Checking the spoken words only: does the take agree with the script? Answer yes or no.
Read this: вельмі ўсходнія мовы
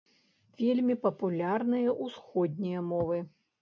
no